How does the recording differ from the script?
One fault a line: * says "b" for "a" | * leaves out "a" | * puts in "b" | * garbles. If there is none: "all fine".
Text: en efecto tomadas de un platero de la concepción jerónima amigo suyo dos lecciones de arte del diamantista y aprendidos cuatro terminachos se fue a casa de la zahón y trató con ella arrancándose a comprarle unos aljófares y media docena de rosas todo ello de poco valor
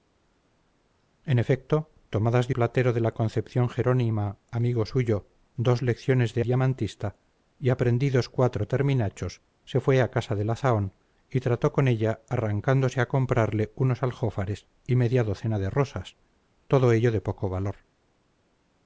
* leaves out "un"
* leaves out "arte del"